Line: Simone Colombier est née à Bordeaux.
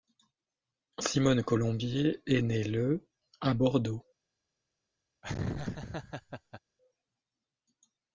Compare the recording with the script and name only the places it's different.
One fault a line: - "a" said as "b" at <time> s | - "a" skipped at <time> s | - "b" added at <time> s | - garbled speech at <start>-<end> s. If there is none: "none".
- "le" added at 2.6 s